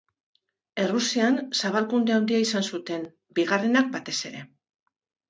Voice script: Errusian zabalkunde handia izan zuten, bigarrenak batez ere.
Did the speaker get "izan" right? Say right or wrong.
right